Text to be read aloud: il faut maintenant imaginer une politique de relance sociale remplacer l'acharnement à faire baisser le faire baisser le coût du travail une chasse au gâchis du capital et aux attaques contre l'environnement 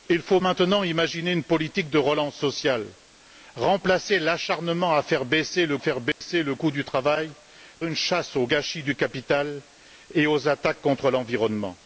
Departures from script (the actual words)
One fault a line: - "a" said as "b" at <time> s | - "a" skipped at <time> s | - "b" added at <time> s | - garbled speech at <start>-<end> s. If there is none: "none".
none